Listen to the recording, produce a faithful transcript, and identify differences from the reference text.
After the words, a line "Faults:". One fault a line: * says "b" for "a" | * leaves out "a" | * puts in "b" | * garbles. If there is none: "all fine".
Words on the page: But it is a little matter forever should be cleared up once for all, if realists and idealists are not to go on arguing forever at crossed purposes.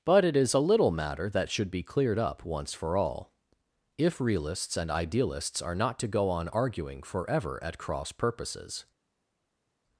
But it is a little matter that should be cleared up once for all, if realists and idealists are not to go on arguing forever at cross purposes.
Faults:
* says "that" for "forever"
* says "cross" for "crossed"